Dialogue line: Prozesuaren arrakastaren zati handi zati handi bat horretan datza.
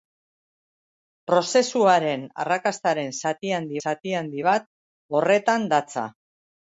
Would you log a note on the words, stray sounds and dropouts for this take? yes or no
no